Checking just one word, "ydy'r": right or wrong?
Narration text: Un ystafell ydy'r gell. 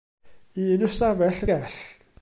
wrong